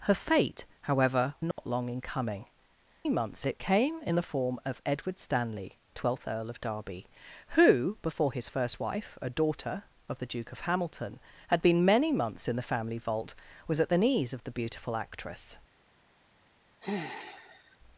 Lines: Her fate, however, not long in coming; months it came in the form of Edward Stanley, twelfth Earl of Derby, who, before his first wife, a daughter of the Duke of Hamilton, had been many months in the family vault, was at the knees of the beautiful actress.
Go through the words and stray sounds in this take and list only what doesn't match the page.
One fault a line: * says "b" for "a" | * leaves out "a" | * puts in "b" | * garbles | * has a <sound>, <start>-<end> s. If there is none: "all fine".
* has a dropout, 1.5-1.6 s
* has a sigh, 16.8-17.8 s